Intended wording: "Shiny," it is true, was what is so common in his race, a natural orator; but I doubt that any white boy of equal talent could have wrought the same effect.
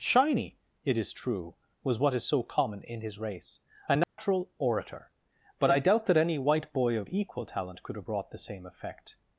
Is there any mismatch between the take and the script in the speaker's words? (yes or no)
yes